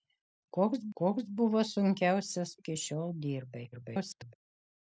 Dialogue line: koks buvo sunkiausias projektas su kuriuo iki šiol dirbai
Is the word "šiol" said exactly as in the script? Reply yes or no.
yes